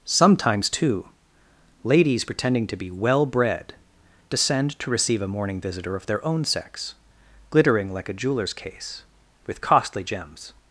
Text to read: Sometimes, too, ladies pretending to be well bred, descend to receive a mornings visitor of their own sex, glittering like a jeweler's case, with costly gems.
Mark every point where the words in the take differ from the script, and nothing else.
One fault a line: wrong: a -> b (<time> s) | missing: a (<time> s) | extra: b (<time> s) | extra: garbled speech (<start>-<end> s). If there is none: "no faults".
wrong: mornings -> morning (5.3 s)